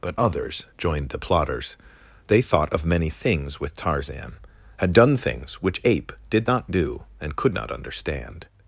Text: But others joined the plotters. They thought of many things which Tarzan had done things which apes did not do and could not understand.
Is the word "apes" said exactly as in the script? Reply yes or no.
no